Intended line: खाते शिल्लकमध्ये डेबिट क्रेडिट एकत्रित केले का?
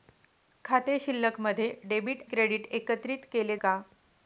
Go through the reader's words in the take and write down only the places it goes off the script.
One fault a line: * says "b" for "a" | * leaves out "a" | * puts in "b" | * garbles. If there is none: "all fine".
all fine